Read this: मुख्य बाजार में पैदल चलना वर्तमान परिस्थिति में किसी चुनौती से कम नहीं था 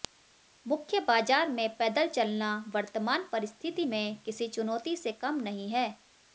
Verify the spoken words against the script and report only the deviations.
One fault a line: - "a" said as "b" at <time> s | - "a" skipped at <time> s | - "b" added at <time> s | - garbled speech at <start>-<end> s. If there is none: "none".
- "था" said as "है" at 5.7 s